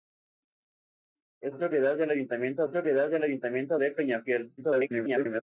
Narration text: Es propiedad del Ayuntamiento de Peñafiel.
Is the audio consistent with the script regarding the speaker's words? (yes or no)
no